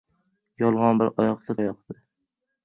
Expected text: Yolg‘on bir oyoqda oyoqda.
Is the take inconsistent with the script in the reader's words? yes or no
no